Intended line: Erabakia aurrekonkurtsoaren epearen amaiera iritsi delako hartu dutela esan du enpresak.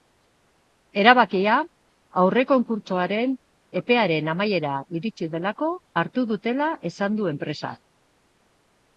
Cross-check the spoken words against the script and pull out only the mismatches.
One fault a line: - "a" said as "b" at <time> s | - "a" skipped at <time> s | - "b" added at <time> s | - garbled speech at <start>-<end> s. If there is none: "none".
none